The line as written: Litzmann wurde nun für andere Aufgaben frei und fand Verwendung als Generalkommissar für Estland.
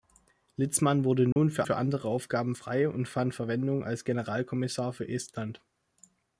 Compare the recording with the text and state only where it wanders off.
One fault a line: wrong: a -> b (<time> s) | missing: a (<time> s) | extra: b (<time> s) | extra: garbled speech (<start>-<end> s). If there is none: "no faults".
extra: für (1.6 s)